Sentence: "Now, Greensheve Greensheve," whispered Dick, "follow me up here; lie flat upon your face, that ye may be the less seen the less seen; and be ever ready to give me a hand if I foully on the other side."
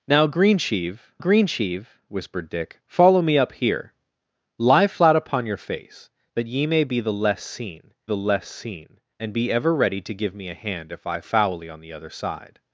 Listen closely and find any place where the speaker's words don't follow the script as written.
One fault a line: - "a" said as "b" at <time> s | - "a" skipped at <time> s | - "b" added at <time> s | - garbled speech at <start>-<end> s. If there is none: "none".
none